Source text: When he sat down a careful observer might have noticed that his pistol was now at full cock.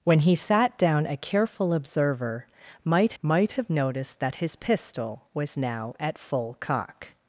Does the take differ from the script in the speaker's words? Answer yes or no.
yes